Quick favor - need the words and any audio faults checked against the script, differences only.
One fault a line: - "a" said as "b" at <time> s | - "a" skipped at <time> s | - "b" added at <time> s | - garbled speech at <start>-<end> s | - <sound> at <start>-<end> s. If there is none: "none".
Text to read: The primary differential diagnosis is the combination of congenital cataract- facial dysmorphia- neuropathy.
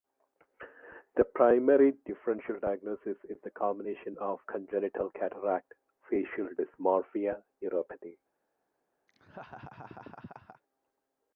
- laugh at 9.1-10.6 s